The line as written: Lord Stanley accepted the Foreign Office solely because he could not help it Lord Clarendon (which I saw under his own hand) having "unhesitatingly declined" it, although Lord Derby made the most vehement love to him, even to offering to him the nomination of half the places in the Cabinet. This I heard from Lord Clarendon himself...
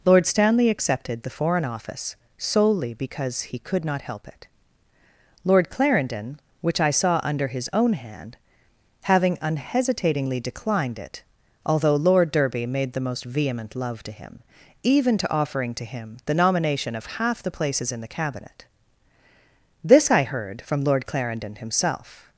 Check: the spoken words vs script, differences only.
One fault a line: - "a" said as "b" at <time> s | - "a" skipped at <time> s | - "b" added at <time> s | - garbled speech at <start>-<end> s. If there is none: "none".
none